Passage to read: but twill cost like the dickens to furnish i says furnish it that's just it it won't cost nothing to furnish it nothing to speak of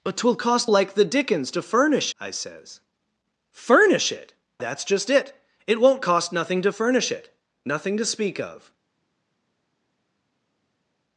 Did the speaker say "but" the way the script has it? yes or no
yes